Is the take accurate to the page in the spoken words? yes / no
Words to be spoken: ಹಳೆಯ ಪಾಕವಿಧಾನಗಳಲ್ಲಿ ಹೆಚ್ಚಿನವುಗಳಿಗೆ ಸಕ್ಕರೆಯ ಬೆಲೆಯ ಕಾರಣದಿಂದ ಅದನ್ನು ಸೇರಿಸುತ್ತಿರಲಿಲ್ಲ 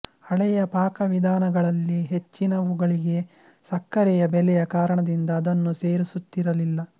yes